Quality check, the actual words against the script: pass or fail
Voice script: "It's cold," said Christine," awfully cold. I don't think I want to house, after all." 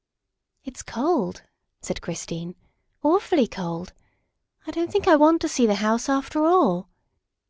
fail